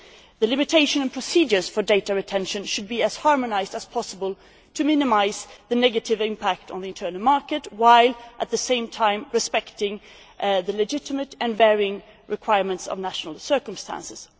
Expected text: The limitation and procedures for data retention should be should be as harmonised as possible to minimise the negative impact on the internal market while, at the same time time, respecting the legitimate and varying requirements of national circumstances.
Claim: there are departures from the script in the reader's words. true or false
true